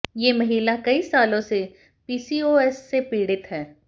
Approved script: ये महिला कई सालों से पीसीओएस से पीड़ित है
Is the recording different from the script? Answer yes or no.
no